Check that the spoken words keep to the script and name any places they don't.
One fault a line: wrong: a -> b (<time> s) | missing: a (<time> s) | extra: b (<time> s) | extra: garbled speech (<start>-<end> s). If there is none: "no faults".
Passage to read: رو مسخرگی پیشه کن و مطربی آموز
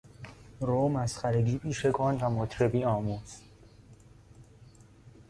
no faults